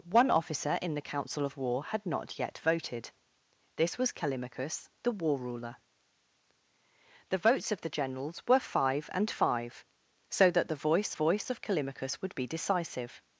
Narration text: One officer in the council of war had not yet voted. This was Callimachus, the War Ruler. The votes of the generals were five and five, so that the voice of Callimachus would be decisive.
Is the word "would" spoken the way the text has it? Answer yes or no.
yes